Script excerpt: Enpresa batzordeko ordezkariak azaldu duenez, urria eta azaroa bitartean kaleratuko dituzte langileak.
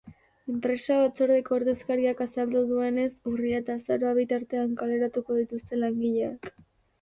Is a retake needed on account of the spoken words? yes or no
no